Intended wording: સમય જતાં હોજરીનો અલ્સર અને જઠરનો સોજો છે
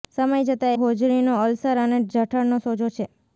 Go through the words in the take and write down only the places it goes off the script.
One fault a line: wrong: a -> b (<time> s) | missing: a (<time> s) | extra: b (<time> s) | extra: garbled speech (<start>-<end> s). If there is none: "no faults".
no faults